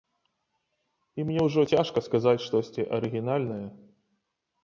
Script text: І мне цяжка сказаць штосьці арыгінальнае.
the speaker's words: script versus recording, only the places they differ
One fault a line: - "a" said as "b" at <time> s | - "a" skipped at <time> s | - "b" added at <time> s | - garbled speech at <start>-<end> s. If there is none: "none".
- "ўжо" added at 1.5 s